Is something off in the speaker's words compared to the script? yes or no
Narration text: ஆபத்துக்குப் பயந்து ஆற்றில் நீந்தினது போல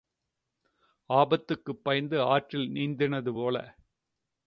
no